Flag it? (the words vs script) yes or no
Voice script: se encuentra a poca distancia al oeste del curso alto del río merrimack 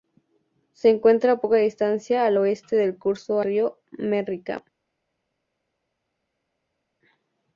yes